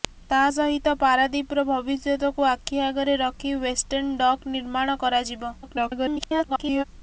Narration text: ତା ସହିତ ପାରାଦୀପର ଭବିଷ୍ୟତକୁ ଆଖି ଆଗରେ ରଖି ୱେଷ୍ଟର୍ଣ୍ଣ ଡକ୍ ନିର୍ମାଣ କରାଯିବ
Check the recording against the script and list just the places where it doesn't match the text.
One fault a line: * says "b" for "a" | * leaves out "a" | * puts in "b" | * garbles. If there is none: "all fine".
* garbles